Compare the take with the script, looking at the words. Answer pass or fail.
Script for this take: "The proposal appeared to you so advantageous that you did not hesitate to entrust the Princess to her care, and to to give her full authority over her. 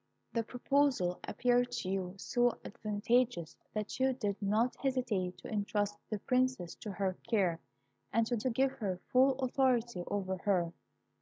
pass